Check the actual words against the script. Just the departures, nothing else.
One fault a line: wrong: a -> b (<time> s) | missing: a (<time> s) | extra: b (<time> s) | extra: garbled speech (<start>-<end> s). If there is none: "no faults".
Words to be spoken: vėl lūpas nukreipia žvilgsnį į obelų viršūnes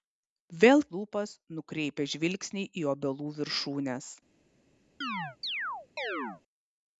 no faults